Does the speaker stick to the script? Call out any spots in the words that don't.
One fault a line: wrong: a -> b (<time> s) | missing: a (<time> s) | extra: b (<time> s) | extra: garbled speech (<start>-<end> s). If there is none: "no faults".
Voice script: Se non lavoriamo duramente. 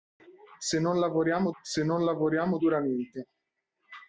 extra: se non lavoriamo (1.6 s)